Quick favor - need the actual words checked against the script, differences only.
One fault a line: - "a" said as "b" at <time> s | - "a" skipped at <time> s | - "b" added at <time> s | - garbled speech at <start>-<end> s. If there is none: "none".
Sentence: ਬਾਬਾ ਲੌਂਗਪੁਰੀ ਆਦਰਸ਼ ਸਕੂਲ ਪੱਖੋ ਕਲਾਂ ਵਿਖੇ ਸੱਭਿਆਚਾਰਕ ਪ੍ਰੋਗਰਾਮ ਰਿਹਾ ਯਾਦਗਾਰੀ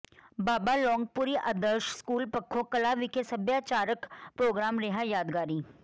none